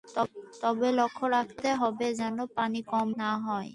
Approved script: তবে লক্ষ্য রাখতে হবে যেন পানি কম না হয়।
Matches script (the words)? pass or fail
pass